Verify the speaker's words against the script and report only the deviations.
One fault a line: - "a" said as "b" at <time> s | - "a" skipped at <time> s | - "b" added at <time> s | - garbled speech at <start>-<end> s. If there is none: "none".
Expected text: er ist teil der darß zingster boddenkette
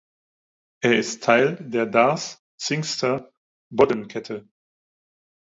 none